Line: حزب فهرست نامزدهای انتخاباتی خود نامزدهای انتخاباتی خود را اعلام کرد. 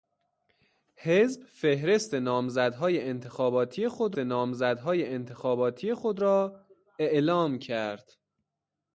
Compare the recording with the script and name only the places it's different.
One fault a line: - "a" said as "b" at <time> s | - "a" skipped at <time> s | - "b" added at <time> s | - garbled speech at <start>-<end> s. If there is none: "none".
none